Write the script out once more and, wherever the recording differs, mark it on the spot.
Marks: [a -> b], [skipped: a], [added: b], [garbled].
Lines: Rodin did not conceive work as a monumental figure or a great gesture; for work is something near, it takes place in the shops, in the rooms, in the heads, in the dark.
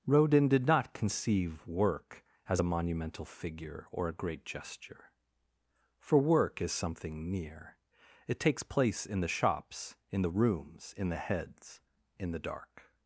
Rodin did not conceive work as a monumental figure or a great gesture; for work is something near, it takes place in the shops, in the rooms, in the heads, in the dark.